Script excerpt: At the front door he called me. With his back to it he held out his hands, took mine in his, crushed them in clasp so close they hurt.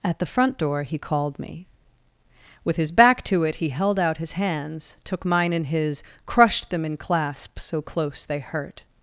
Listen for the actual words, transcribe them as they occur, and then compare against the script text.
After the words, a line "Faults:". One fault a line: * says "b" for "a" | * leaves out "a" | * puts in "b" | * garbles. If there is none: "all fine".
At the front door he called me. With his back to it he held out his hands, took mine in his, crushed them in clasp so close they hurt.
Faults:
all fine